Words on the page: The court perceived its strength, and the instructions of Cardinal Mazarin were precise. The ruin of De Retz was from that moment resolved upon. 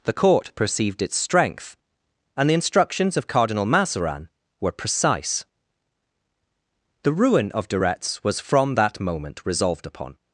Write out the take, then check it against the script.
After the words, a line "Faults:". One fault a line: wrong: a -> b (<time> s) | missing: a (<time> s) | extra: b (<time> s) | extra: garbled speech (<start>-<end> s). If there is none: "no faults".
The court perceived its strength, and the instructions of Cardinal Mazarin were precise. The ruin of De Retz was from that moment resolved upon.
Faults:
no faults